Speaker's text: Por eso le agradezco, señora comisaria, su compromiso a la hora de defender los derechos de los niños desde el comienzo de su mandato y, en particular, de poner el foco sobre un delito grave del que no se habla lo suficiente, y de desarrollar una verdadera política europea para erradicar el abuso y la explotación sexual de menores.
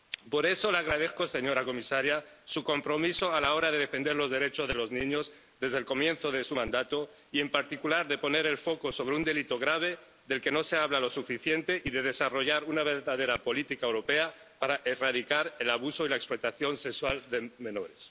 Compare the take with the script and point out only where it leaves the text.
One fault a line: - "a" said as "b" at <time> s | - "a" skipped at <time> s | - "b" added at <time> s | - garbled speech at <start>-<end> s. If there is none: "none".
none